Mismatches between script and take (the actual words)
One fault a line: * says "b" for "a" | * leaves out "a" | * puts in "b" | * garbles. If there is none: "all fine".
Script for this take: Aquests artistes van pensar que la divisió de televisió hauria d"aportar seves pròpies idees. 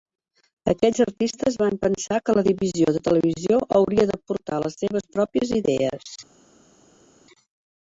* puts in "les"